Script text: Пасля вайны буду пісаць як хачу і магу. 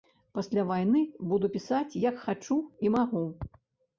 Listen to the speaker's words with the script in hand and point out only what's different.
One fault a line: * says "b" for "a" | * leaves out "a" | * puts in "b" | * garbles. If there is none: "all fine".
all fine